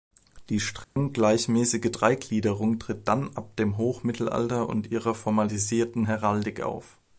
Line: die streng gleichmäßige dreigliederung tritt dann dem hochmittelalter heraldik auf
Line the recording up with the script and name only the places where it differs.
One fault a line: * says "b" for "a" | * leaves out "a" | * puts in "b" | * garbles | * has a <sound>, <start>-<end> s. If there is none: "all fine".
* has a dropout, 0.8-1.0 s
* puts in "ab"
* puts in "und ihrer formalisierten"